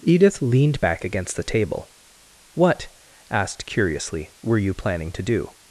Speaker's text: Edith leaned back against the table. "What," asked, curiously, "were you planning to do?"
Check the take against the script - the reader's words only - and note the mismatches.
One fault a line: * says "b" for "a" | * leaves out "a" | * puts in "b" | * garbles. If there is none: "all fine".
all fine